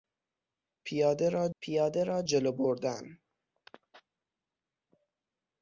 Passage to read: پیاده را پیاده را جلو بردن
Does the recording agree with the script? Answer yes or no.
yes